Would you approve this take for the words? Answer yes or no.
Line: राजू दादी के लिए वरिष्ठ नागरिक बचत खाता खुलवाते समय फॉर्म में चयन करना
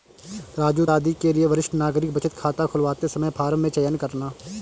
yes